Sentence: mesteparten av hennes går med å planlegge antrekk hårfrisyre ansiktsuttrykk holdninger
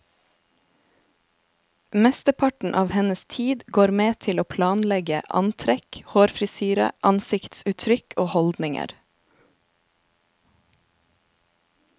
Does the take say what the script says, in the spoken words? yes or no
no